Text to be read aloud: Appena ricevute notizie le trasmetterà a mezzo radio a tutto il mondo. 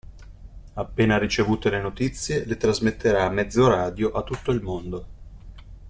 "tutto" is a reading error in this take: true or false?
false